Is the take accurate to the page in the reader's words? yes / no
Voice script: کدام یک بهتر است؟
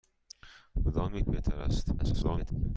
no